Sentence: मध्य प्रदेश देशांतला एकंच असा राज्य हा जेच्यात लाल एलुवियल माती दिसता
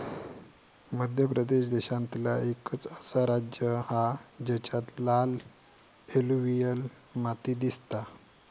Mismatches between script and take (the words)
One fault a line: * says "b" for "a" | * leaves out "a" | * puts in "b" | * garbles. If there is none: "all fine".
all fine